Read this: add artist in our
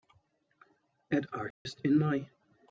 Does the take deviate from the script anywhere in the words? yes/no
yes